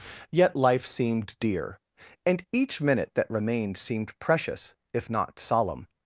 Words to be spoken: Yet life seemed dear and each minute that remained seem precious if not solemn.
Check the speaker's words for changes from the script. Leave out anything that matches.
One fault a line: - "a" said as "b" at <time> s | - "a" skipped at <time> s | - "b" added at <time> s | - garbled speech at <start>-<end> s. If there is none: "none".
- "seem" said as "seemed" at 3.8 s